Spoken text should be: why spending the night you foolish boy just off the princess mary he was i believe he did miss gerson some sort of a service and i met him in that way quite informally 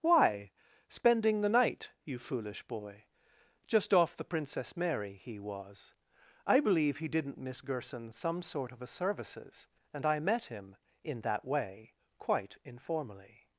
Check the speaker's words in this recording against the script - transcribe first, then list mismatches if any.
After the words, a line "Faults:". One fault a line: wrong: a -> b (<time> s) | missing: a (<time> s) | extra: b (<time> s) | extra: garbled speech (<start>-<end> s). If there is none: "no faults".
why spending the night you foolish boy just off the princess mary he was i believe he didn't miss gerson some sort of a services and i met him in that way quite informally
Faults:
wrong: did -> didn't (7.1 s)
wrong: service -> services (8.9 s)